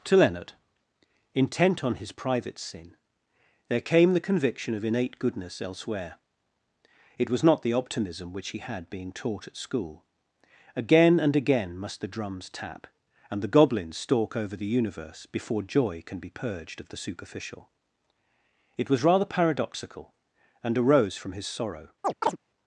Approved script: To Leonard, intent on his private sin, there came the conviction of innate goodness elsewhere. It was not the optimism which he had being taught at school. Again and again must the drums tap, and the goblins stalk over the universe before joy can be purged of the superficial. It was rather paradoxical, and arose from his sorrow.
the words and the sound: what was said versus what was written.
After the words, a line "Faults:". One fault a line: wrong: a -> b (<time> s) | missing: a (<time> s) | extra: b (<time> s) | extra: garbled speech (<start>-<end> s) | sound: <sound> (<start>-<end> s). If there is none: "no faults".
To Leonard, intent on his private sin, there came the conviction of innate goodness elsewhere. It was not the optimism which he had being taught at school. Again and again must the drums tap, and the goblins stalk over the universe before joy can be purged of the superficial. It was rather paradoxical, and arose from his sorrow.
Faults:
sound: chirp (22.0-22.4 s)